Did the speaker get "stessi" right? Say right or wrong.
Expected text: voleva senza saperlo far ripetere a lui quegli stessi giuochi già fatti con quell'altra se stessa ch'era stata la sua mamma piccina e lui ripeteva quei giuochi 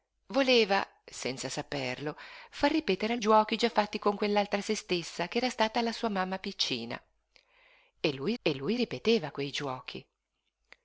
wrong